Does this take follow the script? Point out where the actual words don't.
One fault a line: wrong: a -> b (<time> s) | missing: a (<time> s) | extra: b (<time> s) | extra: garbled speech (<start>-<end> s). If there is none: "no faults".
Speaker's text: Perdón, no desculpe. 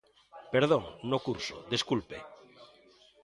extra: curso (1.3 s)